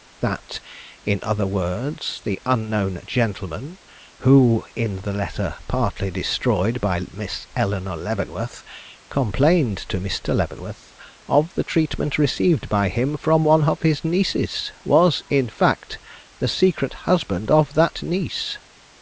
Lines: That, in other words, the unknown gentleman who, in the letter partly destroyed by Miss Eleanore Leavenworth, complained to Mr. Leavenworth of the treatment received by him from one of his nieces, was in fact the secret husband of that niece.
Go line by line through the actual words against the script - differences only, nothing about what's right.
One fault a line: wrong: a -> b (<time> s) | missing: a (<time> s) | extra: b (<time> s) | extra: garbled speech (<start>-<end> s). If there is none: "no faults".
no faults